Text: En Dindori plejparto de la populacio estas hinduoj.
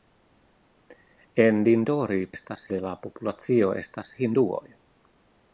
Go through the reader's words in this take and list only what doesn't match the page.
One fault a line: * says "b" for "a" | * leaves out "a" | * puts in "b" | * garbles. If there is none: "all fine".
* says "estas" for "plejparto"